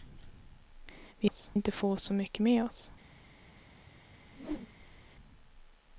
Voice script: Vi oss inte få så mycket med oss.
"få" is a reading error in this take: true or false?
false